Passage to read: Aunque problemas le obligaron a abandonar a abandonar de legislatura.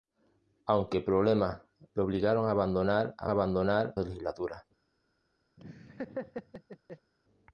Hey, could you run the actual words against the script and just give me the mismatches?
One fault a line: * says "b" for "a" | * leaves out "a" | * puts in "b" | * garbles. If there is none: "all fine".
all fine